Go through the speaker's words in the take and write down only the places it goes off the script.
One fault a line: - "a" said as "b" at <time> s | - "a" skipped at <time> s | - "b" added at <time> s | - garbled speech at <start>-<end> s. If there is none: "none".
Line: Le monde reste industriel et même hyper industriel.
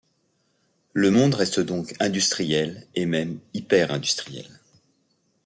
- "donc" added at 1.6 s